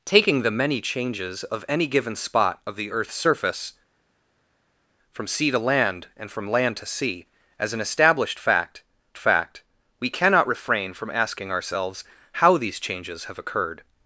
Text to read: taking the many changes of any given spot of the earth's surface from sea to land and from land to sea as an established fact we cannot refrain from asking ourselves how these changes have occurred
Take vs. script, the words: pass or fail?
fail